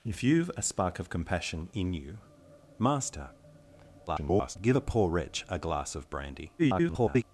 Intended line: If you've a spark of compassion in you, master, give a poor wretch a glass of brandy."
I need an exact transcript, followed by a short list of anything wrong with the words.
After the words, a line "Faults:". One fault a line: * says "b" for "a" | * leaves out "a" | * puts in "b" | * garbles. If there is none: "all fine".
If you've a spark of compassion in you, master, [garbled] give a poor wretch a glass of brandy." [garbled]
Faults:
* garbles
* garbles